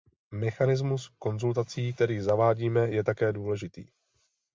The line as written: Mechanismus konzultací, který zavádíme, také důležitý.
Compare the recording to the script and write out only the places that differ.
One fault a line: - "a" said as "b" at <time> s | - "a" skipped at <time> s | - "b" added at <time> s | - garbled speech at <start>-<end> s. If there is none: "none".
- "je" added at 2.9 s